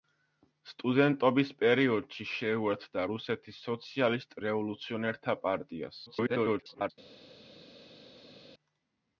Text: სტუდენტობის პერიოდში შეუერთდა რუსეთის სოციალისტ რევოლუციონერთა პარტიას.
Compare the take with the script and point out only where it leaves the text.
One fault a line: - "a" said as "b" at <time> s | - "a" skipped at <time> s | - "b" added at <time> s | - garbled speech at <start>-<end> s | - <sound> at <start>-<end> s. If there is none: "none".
- garbled speech at 6.1-6.9 s